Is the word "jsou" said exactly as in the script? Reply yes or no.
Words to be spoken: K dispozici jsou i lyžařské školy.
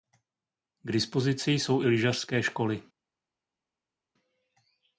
yes